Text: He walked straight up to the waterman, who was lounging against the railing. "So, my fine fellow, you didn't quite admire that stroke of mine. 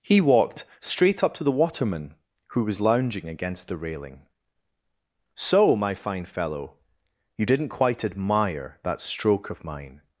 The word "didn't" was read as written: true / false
true